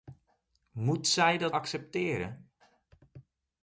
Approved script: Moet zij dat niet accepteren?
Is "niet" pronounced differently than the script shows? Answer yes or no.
yes